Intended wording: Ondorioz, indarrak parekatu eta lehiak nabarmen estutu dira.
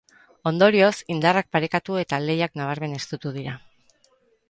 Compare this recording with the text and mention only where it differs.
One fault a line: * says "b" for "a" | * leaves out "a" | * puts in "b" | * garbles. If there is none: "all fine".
all fine